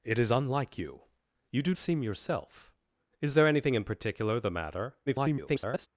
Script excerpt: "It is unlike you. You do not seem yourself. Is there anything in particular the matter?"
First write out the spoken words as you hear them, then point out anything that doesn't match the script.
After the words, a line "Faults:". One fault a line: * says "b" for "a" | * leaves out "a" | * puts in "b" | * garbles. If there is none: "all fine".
"It is unlike you. You do seem yourself. Is there anything in particular the matter?" [garbled]
Faults:
* leaves out "not"
* garbles